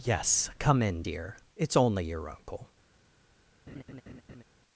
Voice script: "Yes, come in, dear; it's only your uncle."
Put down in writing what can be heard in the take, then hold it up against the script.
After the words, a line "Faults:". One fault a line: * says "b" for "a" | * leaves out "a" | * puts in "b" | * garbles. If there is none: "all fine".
"Yes, come in, dear; it's only your uncle."
Faults:
all fine